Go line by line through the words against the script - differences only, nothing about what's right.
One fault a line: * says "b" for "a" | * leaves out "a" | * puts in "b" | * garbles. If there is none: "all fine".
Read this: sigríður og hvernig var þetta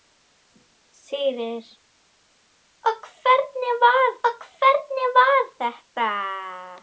* puts in "og hvernig var"